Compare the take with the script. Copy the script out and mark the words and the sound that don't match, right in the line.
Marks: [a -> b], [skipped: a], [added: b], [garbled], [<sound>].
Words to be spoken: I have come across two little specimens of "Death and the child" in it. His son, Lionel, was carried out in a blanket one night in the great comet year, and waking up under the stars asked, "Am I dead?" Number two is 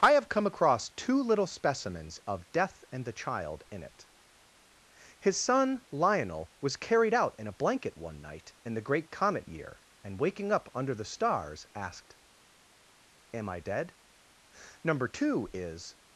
I have come across two little specimens of "Death and the child" in it. His son, Lionel, was carried out in a blanket one night in the great comet year, and waking up under the stars asked, "Am I dead?" Number two is